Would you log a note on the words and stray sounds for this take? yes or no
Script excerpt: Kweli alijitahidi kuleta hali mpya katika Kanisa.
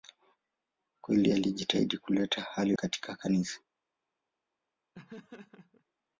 yes